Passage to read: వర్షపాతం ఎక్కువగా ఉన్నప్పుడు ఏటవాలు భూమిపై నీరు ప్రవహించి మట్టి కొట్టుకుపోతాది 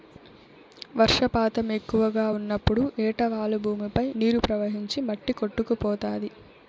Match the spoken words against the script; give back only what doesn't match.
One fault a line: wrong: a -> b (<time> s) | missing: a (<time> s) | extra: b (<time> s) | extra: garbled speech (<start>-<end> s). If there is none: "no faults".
no faults